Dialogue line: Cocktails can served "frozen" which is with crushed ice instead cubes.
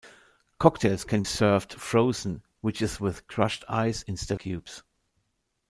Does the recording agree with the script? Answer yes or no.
yes